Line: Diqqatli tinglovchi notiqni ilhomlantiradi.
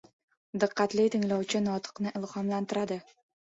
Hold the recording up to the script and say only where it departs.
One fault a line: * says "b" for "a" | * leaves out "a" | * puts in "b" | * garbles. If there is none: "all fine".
all fine